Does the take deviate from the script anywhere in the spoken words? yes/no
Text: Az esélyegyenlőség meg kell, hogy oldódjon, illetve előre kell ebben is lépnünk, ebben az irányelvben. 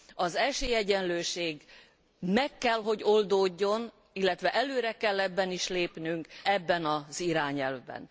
no